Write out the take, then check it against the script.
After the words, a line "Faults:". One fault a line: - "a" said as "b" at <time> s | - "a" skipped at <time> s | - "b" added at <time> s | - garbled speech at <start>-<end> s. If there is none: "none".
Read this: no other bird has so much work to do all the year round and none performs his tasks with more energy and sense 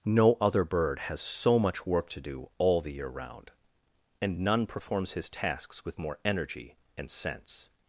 no other bird has so much work to do all the year round and none performs his tasks with more energy and sense
Faults:
none